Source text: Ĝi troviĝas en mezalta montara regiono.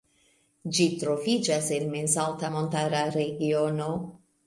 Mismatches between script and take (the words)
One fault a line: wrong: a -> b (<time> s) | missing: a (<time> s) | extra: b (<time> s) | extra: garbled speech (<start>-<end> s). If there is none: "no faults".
no faults